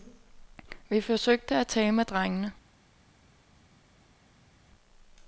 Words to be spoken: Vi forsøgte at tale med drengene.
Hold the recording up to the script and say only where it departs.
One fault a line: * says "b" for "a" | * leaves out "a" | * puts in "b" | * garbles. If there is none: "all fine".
all fine